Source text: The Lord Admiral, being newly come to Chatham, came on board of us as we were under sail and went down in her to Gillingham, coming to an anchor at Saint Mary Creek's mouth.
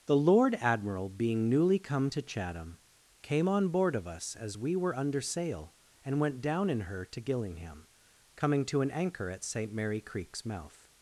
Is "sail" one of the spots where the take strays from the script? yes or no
no